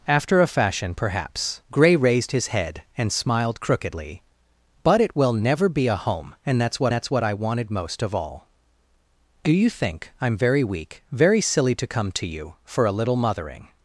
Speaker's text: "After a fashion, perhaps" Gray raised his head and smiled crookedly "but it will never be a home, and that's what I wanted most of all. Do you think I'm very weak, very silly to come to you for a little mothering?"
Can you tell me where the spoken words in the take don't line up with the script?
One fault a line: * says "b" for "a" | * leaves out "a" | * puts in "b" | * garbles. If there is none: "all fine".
* puts in "that's what"